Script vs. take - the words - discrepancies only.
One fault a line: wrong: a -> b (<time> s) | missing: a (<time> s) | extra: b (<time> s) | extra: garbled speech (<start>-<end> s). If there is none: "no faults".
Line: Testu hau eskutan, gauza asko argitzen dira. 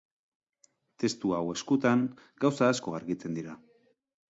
no faults